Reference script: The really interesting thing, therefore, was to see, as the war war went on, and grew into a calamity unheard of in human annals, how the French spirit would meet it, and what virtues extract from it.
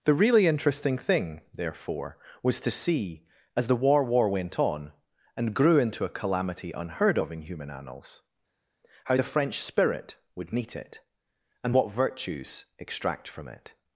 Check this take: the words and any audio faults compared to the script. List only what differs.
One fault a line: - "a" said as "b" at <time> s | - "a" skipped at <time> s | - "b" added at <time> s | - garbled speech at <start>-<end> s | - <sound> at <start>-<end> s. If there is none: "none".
none